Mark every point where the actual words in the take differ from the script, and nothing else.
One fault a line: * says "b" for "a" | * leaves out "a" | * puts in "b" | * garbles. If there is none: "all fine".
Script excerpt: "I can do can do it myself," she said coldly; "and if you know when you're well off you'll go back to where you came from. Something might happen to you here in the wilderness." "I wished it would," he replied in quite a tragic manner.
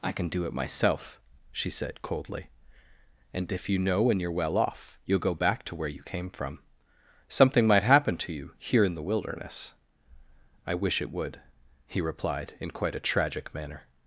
* leaves out "can do"
* says "wish" for "wished"